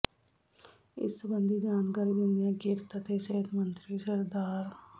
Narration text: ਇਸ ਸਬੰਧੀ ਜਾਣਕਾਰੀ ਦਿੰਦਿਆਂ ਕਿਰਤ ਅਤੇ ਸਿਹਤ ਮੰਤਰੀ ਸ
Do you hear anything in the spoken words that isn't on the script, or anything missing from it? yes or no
no